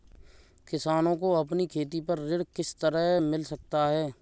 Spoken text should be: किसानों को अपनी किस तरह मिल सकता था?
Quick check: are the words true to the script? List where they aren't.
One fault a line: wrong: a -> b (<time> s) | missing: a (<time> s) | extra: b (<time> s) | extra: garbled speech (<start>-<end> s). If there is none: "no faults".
extra: खेती पर ऋण (1.7 s)
wrong: था -> है (3.9 s)